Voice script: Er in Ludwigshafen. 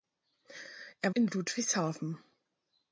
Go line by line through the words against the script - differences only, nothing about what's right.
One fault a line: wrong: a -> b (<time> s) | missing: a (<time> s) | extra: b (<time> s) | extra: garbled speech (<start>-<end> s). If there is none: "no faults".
no faults